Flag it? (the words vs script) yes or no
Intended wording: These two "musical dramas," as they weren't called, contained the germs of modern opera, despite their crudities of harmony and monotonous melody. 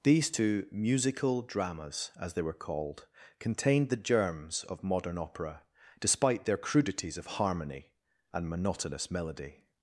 yes